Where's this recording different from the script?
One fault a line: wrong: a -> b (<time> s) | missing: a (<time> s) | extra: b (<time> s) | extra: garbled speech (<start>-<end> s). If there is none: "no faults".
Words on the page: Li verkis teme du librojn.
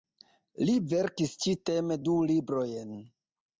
extra: ĉi (1.4 s)